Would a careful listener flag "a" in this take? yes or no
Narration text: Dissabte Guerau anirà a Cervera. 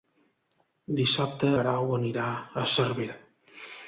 no